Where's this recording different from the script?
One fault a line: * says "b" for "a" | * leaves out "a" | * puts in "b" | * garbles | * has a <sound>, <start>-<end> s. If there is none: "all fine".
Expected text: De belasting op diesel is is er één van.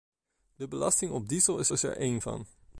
all fine